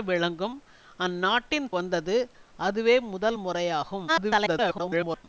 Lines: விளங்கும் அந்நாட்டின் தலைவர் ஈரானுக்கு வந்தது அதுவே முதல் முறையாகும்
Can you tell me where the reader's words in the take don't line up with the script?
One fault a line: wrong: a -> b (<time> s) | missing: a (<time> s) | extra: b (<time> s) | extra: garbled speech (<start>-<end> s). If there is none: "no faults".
missing: தலைவர் ஈரானுக்கு (1.7 s)
extra: garbled speech (4.1-5.3 s)